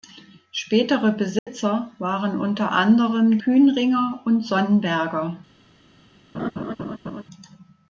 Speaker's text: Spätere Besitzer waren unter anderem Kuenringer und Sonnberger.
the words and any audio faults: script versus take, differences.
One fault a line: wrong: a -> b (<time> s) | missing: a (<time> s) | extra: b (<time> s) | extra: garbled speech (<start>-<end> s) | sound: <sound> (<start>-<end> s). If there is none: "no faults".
sound: dropout (1.4-1.5 s)
sound: laugh (6.3-7.2 s)